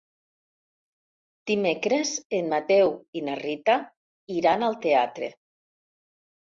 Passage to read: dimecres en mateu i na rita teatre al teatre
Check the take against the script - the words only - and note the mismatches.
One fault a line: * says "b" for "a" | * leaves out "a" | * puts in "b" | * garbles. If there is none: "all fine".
* says "iran" for "teatre"